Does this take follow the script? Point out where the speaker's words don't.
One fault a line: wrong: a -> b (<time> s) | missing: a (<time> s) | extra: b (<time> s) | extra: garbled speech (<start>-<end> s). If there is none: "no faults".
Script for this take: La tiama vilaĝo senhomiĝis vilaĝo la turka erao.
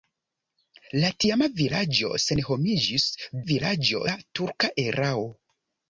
no faults